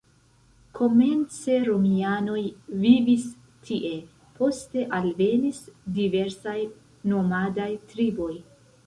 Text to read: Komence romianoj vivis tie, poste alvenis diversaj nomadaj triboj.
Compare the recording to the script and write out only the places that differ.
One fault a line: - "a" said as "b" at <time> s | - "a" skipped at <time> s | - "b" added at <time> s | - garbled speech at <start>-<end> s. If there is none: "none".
none